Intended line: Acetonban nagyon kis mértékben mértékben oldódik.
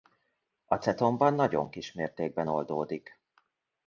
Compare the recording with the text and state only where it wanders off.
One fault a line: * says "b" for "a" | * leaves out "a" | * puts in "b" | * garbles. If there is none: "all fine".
* leaves out "mértékben"